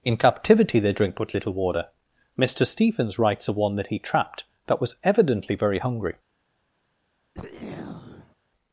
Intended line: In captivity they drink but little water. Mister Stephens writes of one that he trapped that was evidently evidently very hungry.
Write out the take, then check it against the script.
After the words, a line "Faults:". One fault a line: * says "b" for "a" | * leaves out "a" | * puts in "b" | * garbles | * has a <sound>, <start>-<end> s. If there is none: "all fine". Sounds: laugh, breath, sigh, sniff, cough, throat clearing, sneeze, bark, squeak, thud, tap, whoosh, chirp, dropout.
In captivity they drink but little water. Mister Stephens writes of one that he trapped that was evidently very hungry.
Faults:
* leaves out "evidently"
* has a throat clearing, 7.3-8.4 s